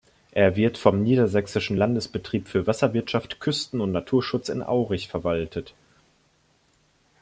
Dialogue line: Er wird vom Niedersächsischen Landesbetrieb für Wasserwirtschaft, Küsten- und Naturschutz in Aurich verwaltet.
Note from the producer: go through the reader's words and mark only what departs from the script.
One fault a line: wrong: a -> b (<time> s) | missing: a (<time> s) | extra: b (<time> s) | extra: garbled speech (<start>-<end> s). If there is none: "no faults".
no faults